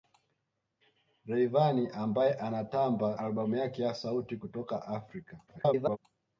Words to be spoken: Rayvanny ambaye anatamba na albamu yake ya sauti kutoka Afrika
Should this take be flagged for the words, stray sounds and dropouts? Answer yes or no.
yes